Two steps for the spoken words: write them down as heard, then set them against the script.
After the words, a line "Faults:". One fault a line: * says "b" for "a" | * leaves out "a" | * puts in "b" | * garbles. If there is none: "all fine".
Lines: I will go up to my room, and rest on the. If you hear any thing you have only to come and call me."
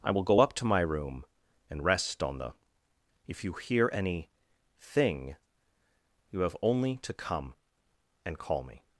I will go up to my room, and rest on the. If you hear any thing you have only to come and call me."
Faults:
all fine